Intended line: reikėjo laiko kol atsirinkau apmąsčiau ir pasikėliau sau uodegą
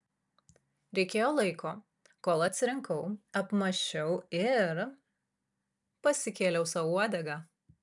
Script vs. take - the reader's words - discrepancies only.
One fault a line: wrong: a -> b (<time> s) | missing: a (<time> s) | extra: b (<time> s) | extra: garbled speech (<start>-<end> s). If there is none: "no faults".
no faults